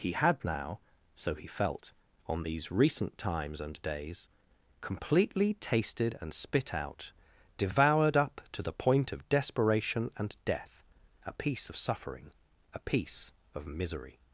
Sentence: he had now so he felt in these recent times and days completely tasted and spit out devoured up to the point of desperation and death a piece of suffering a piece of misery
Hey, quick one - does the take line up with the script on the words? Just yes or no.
no